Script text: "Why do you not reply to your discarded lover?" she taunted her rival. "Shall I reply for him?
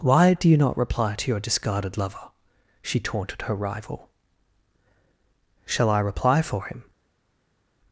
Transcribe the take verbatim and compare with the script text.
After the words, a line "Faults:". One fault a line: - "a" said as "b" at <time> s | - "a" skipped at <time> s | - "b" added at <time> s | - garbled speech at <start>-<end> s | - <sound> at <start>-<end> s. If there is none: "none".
"Why do you not reply to your discarded lover?" she taunted her rival. "Shall I reply for him?
Faults:
none